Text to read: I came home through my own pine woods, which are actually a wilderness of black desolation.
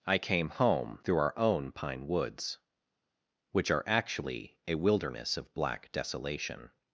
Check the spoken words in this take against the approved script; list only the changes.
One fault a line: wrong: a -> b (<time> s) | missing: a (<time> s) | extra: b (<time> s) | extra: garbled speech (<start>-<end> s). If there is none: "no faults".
wrong: my -> our (1.2 s)